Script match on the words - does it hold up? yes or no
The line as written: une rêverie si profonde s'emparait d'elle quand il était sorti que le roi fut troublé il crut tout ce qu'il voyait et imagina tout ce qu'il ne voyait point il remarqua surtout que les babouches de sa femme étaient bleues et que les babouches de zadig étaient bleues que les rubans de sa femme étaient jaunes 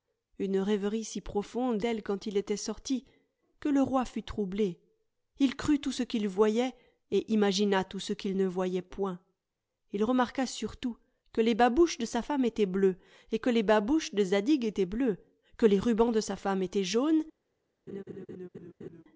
no